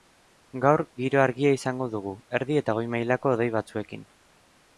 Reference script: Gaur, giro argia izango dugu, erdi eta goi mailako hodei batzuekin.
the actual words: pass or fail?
pass